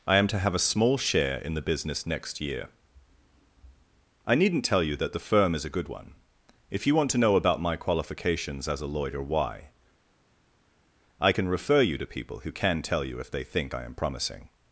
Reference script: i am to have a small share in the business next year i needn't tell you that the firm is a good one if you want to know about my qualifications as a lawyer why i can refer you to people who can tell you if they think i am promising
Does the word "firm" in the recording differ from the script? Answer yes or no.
no